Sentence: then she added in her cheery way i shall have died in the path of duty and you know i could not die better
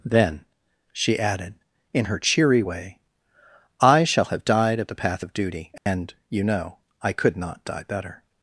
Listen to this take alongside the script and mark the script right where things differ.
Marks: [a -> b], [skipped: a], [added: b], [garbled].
then she added in her cheery way i shall have died [in -> at] the path of duty and you know i could not die better